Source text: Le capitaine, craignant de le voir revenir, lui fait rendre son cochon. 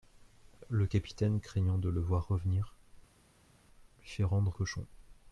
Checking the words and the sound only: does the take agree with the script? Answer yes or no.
no